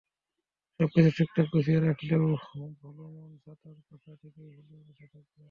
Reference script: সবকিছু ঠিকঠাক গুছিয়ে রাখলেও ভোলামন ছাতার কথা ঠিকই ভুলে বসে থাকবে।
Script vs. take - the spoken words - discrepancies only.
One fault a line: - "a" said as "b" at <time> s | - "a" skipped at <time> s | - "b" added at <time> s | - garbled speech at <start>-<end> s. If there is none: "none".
none